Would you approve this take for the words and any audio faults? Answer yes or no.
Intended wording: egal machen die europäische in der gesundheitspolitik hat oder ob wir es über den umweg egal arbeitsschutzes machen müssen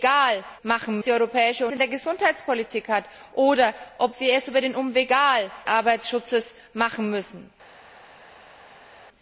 yes